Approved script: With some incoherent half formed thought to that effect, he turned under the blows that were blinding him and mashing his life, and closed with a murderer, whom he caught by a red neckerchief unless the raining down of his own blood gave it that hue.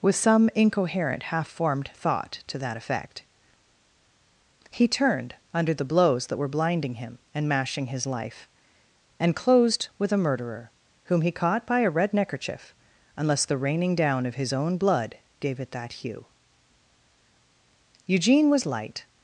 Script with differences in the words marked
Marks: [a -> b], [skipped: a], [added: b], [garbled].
With some incoherent half formed thought to that effect, he turned under the blows that were blinding him and mashing his life, and closed with a murderer, whom he caught by a red neckerchief unless the raining down of his own blood gave it that hue. [added: Eugene was light]